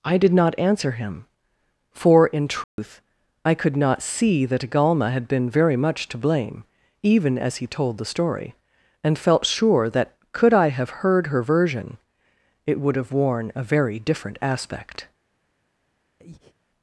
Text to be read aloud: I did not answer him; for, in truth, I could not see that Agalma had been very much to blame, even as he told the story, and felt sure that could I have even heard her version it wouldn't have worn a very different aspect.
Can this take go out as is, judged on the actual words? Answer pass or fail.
fail